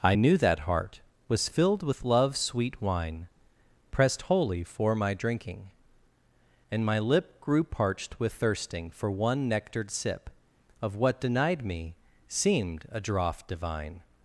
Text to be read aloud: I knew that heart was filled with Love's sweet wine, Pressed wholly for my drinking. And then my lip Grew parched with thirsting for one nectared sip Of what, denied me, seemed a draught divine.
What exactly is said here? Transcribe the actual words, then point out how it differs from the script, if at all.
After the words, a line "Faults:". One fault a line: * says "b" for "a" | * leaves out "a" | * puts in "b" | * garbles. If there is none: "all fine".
I knew that heart was filled with Love's sweet wine, Pressed wholly for my drinking. And my lip Grew parched with thirsting for one nectared sip Of what, denied me, seemed a draught divine.
Faults:
* leaves out "then"